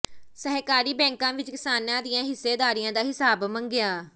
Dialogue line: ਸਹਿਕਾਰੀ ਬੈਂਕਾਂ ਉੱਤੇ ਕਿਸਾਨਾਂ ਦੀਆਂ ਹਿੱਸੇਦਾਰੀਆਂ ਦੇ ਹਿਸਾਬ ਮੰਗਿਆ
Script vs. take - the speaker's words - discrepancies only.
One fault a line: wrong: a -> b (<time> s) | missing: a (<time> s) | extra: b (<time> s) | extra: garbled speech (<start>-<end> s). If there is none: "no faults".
wrong: ਉੱਤੇ -> ਵਿੱਚ (1.3 s)
wrong: ਦੇ -> ਦਾ (2.9 s)